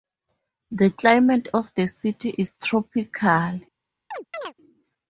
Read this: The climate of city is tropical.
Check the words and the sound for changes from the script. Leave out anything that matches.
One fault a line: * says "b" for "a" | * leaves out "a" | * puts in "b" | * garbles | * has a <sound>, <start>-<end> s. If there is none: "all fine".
* puts in "the"
* has a chirp, 4.1-4.5 s